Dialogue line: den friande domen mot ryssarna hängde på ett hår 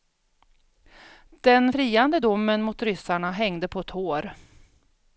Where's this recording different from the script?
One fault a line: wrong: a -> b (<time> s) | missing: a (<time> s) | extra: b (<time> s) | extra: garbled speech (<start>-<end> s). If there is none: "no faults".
no faults